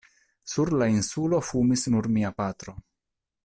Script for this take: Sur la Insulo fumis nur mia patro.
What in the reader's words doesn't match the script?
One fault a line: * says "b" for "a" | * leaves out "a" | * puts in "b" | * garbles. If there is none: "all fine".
all fine